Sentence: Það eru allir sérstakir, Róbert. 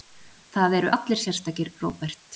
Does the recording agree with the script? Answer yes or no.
yes